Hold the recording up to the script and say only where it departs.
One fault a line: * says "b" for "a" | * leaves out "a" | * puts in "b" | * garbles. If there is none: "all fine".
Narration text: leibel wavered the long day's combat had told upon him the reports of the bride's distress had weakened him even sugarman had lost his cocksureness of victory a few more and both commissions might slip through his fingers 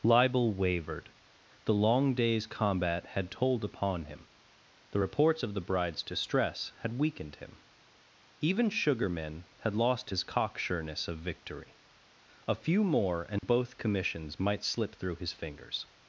all fine